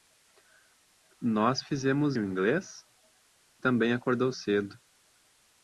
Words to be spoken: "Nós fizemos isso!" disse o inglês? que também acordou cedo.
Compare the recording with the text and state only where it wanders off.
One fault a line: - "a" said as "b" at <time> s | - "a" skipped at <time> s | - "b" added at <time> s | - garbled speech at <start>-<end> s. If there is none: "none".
- "isso disse" skipped at 2.2 s
- "que" skipped at 2.8 s